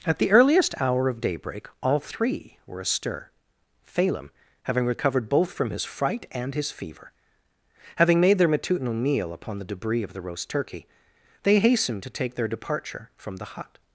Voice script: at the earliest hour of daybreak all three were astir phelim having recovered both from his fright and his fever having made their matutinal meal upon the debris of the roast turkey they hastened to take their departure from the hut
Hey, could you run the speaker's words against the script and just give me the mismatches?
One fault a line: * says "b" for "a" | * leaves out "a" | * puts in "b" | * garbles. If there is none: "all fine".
all fine